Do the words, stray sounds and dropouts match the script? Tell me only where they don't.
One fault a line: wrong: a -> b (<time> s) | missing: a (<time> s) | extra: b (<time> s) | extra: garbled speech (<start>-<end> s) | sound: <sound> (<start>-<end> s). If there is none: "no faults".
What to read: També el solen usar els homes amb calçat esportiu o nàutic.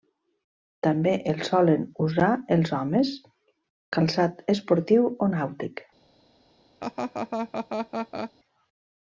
missing: amb (3.1 s)
sound: laugh (6.8-8.3 s)